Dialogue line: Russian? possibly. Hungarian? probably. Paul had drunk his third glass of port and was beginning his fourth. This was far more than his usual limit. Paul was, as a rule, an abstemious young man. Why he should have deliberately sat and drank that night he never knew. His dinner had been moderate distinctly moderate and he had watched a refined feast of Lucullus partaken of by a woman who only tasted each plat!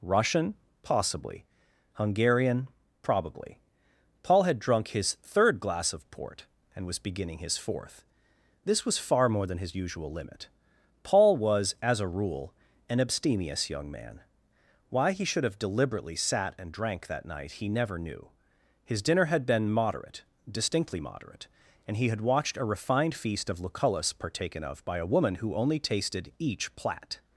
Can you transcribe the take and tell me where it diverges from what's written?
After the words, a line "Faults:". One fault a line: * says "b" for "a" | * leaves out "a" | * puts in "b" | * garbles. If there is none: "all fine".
Russian? possibly. Hungarian? probably. Paul had drunk his third glass of port and was beginning his fourth. This was far more than his usual limit. Paul was, as a rule, an abstemious young man. Why he should have deliberately sat and drank that night he never knew. His dinner had been moderate distinctly moderate and he had watched a refined feast of Lucullus partaken of by a woman who only tasted each plat!
Faults:
all fine